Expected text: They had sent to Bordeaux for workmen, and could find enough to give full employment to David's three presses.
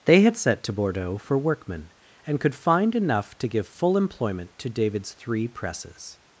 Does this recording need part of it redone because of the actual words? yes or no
yes